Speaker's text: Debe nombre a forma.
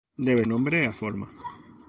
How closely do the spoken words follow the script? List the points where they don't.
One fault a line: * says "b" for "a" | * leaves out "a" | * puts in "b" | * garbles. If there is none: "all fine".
all fine